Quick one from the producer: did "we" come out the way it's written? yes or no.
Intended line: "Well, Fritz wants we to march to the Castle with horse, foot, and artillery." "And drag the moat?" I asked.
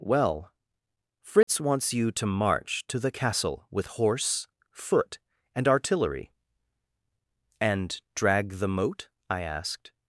no